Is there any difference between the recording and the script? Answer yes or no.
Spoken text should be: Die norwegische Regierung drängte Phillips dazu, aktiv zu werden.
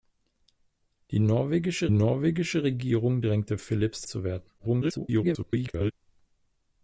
yes